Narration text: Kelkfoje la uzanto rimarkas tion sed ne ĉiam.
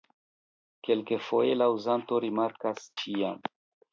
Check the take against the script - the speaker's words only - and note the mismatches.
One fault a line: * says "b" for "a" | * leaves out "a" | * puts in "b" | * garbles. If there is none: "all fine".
* leaves out "tion sed ne"